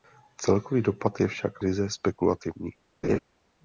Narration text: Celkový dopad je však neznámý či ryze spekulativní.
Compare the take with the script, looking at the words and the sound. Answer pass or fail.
fail